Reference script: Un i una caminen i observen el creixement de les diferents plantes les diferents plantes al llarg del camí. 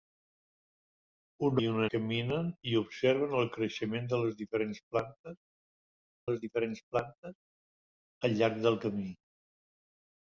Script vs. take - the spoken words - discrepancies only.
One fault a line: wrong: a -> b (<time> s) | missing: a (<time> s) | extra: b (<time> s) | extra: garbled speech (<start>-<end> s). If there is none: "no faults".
no faults